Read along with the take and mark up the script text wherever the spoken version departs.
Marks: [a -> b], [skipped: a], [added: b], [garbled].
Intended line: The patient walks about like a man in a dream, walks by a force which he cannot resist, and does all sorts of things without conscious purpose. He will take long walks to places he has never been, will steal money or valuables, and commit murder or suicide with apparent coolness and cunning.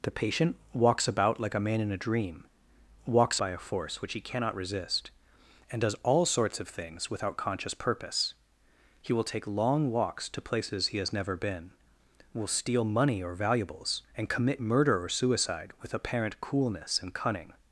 The patient walks about like a man in a dream, walks by a force which he cannot resist, and does all sorts of things without conscious purpose. He will take long walks to places he has never been, will steal money or valuables, and commit murder or suicide with apparent coolness and cunning.